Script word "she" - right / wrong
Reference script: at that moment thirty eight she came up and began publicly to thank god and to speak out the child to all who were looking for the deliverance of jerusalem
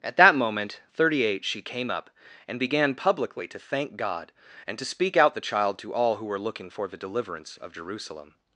right